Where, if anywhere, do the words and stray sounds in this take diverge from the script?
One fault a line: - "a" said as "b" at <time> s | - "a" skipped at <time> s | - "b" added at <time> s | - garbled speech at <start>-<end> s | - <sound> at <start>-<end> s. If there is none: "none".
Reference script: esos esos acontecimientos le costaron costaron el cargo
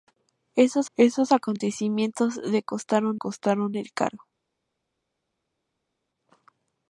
none